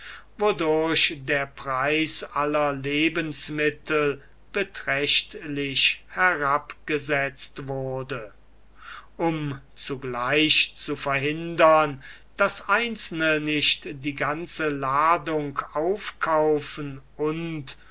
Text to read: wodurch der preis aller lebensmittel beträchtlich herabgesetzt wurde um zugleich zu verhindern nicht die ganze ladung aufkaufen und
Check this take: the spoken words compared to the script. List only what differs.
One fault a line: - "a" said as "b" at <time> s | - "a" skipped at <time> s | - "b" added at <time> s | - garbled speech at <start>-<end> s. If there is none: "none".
- "daß einzelne" added at 12.4 s